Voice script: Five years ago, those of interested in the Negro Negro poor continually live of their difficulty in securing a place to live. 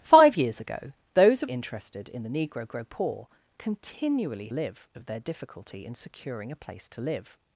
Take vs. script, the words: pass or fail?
pass